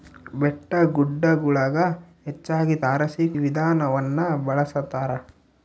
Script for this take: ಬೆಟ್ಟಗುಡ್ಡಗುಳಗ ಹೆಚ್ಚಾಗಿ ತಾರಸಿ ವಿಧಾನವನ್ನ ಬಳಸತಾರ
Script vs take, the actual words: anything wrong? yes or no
no